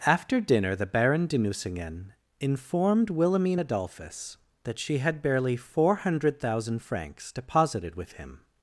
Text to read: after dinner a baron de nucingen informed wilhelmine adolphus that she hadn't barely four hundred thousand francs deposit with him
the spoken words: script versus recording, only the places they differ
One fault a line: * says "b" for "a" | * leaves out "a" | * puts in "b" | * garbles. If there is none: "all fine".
* says "the" for "a"
* says "had" for "hadn't"
* says "deposited" for "deposit"